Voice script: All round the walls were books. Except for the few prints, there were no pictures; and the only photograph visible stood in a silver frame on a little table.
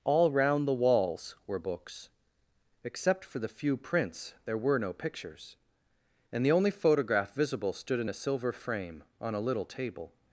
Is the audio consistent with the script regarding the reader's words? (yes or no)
yes